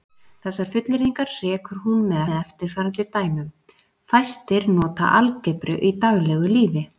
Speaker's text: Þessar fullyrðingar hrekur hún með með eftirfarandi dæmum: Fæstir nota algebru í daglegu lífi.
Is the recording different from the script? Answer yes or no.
no